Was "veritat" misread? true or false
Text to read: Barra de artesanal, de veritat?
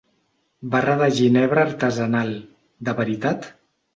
false